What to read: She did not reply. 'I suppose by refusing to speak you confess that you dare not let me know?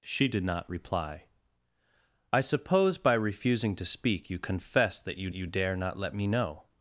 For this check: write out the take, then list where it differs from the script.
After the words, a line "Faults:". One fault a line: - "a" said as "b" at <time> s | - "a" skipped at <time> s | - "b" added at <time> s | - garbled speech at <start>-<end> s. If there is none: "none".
She did not reply. 'I suppose by refusing to speak you confess that you you dare not let me know?
Faults:
- "you" added at 5.3 s